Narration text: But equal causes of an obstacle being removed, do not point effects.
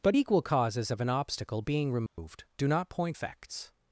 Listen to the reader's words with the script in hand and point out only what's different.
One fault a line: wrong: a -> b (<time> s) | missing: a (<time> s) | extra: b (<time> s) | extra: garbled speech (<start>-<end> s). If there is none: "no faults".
no faults